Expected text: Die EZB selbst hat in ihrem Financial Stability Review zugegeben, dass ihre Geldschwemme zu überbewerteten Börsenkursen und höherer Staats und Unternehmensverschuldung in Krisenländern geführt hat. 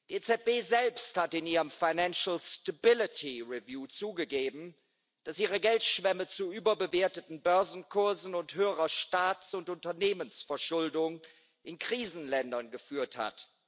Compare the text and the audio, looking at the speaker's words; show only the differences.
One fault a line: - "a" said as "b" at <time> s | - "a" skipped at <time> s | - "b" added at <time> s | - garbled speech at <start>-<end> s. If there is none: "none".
none